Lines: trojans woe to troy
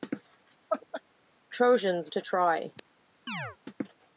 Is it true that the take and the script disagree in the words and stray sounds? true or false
true